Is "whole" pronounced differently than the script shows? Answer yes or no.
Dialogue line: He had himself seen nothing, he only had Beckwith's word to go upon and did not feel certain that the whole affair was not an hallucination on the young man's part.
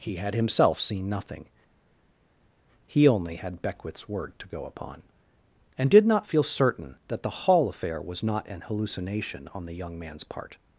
yes